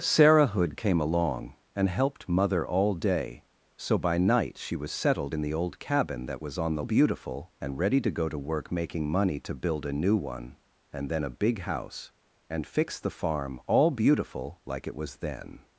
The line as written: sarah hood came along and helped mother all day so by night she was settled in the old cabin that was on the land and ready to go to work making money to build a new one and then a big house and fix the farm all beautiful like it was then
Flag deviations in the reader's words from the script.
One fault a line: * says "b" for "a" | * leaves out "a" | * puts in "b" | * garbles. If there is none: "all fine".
* says "beautiful" for "land"